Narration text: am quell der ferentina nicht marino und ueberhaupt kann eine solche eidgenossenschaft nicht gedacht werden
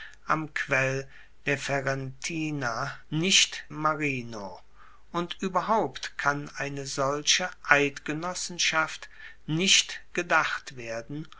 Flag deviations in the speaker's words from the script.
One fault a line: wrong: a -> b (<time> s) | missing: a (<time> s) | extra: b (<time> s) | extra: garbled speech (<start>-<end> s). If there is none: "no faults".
no faults